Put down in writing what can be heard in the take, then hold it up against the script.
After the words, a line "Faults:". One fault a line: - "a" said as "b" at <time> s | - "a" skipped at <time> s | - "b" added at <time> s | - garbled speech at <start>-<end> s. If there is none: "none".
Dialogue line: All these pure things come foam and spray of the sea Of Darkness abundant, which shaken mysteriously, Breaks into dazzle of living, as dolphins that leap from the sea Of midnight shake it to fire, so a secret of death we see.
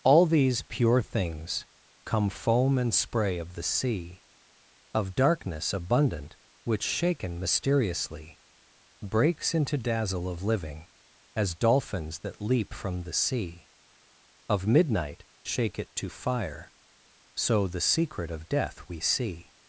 All these pure things come foam and spray of the sea Of Darkness abundant, which shaken mysteriously, Breaks into dazzle of living, as dolphins that leap from the sea Of midnight shake it to fire, so the secret of death we see.
Faults:
- "a" said as "the" at 17.7 s